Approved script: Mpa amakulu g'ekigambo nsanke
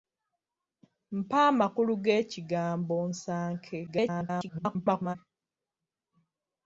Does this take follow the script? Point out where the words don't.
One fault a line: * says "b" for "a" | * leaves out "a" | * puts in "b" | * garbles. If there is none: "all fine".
* garbles